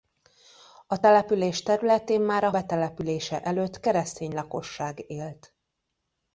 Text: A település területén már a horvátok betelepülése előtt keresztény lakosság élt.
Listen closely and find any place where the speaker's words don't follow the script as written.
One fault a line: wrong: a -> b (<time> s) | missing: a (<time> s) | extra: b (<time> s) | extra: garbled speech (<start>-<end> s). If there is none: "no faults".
missing: horvátok (2.5 s)